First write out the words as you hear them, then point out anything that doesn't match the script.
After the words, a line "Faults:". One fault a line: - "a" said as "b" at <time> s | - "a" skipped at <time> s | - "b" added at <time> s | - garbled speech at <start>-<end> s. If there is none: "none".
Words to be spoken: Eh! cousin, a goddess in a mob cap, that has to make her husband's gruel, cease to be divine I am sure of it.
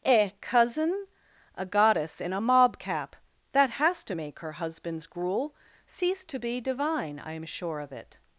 Eh! cousin, a goddess in a mob cap, that has to make her husband's gruel, cease to be divine I am sure of it.
Faults:
none